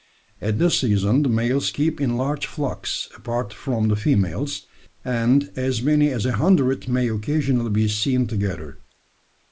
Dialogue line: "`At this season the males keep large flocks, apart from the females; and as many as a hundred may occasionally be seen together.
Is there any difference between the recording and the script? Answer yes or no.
yes